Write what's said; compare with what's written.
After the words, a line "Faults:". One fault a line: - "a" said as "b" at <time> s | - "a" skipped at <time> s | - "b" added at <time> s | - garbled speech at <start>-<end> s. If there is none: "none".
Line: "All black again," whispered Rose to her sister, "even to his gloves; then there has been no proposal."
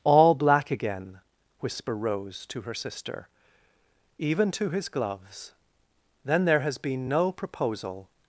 "All black again," whisper Rose to her sister, "even to his gloves; then there has been no proposal."
Faults:
- "whispered" said as "whisper" at 1.6 s